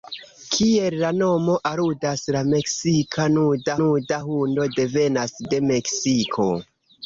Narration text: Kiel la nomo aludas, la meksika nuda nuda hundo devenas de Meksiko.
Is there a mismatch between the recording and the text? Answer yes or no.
no